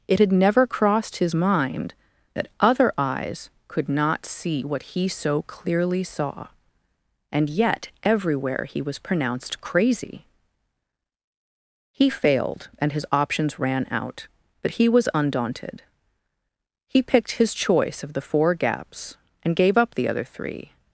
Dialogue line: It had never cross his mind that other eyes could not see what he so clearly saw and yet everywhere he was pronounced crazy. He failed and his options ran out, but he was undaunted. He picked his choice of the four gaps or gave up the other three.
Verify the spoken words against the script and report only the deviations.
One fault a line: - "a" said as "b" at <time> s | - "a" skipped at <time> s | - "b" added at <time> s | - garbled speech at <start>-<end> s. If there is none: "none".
- "cross" said as "crossed" at 0.7 s
- "or" said as "and" at 19.4 s